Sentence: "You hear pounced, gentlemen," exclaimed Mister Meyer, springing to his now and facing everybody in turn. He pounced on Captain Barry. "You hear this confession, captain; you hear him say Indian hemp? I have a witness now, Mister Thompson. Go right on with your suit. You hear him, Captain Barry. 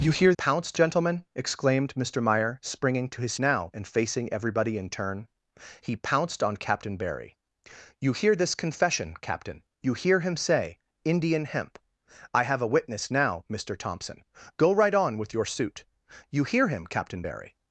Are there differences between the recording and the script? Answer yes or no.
no